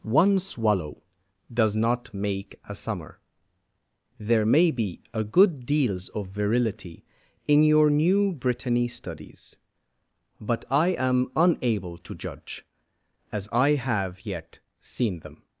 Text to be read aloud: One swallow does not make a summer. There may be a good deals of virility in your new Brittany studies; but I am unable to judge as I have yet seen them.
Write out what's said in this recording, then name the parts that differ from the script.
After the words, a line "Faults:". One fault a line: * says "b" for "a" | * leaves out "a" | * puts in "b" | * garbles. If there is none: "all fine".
One swallow does not make a summer. There may be a good deals of virility in your new Brittany studies; but I am unable to judge as I have yet seen them.
Faults:
all fine